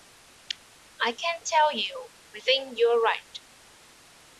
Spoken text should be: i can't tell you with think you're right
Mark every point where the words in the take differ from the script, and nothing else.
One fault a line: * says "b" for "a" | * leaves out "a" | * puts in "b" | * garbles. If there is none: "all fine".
all fine